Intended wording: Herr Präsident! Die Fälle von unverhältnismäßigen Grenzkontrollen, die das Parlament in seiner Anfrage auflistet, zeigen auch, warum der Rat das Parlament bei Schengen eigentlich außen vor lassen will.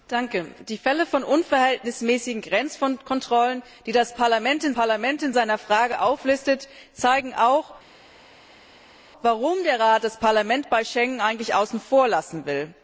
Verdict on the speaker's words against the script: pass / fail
fail